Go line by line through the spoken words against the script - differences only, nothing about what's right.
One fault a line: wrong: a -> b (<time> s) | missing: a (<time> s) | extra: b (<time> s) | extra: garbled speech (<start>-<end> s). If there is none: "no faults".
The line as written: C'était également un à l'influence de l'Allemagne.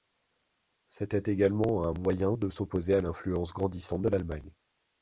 extra: moyen de s'opposer (1.9 s)
extra: grandissante (3.5 s)